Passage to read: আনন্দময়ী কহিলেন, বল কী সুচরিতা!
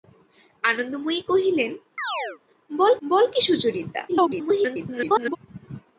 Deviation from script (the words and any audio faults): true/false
true